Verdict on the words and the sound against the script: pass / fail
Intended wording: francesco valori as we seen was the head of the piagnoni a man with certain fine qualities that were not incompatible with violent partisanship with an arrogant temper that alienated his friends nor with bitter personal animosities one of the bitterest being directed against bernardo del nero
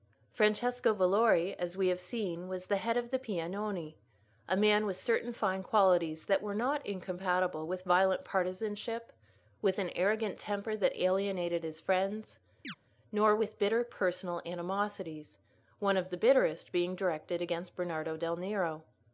fail